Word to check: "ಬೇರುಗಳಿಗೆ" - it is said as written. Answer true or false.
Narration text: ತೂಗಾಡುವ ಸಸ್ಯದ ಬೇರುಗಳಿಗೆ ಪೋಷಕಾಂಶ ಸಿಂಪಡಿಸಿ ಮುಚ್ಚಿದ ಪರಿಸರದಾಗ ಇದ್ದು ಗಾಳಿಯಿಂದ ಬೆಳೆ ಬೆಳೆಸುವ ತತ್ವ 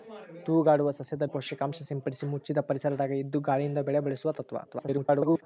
false